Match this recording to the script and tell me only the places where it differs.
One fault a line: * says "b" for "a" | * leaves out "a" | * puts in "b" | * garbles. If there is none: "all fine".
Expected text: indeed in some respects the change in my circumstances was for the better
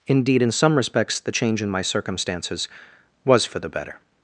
all fine